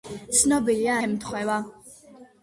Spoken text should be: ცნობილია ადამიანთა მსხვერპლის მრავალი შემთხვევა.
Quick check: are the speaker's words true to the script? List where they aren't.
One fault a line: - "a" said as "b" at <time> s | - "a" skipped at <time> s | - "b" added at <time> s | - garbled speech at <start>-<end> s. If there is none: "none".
- "ადამიანთა მსხვერპლის მრავალი" skipped at 0.9 s